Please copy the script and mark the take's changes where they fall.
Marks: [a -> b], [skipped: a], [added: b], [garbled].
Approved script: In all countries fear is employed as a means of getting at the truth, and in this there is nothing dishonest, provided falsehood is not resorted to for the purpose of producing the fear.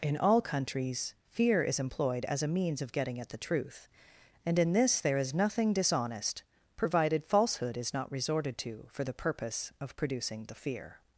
In all countries fear is employed as a means of getting at the truth, and in this there is nothing dishonest, provided falsehood is not resorted to for the purpose of producing the fear.